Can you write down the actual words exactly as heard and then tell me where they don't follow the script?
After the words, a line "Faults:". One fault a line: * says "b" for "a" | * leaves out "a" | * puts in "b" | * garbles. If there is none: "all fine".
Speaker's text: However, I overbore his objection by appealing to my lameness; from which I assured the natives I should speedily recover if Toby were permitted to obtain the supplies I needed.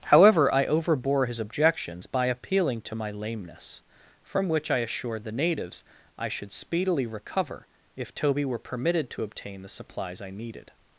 However, I overbore his objections by appealing to my lameness; from which I assured the natives I should speedily recover if Toby were permitted to obtain the supplies I needed.
Faults:
* says "objections" for "objection"